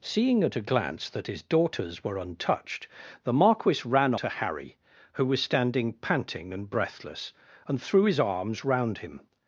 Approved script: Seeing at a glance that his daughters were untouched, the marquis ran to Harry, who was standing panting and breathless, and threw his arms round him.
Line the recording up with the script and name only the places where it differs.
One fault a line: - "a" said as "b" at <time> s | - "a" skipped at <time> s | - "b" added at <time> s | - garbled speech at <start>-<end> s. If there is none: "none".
none